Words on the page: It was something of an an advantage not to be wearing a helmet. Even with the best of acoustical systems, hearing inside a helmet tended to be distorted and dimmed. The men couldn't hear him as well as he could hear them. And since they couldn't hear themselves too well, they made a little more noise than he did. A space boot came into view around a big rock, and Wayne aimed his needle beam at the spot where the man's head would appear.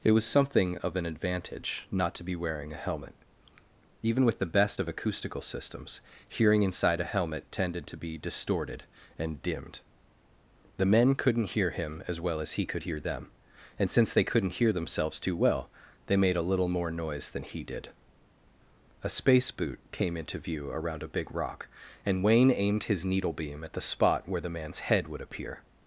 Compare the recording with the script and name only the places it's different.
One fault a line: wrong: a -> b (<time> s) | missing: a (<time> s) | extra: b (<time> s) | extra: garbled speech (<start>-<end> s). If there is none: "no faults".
missing: an (1.1 s)